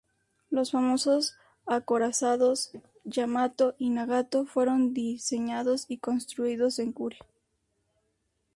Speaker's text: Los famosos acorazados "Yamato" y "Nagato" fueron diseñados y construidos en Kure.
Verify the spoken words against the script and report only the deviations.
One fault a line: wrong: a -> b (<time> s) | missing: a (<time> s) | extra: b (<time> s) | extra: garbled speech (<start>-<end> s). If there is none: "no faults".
no faults